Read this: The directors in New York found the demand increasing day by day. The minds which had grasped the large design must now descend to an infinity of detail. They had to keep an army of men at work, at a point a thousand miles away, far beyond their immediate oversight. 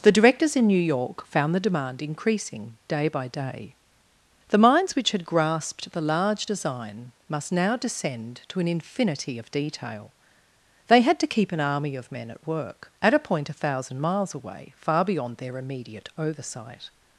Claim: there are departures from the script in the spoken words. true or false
false